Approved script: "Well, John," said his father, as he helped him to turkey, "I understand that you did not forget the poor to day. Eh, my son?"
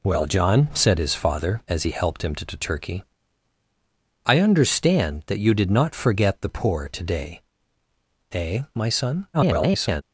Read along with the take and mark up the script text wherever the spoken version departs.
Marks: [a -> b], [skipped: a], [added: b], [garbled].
"Well, John," said his father, as he helped him to [added: to] turkey, "I understand that you did not forget the poor to day. Eh, my son?" [garbled]